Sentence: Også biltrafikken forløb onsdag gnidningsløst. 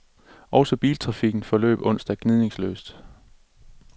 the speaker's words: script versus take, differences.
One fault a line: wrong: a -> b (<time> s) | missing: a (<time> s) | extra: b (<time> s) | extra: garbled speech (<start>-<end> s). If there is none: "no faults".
no faults